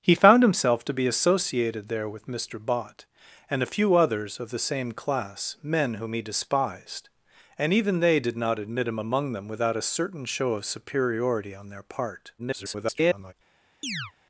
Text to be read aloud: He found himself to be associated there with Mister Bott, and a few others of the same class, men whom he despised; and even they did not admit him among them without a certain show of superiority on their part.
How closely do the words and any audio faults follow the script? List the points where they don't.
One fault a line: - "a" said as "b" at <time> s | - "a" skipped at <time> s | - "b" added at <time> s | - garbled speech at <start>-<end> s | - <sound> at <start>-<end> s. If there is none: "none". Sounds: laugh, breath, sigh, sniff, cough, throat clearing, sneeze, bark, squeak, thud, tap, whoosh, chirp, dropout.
- garbled speech at 12.4-13.3 s
- chirp at 13.8-14.1 s